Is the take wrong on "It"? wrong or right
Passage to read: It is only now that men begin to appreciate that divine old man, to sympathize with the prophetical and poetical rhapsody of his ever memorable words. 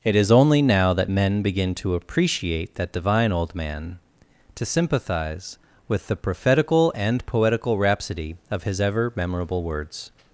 right